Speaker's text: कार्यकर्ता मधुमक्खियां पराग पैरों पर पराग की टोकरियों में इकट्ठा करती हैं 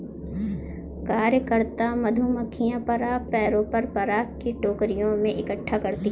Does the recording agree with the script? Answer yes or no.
yes